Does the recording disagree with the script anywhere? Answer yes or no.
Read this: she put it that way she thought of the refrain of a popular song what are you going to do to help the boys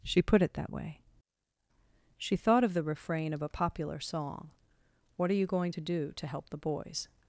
no